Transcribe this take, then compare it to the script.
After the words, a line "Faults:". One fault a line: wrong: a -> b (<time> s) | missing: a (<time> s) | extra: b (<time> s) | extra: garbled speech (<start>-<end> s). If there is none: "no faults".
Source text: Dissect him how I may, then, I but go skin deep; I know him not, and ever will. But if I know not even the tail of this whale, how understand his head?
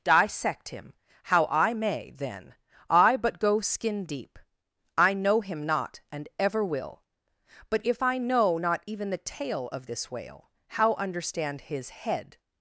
Dissect him how I may, then, I but go skin deep; I know him not, and ever will. But if I know not even the tail of this whale, how understand his head?
Faults:
no faults